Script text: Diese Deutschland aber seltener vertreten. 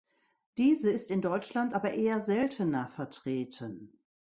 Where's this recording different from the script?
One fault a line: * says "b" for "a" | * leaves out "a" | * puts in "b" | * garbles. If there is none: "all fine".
* puts in "ist in"
* puts in "eher"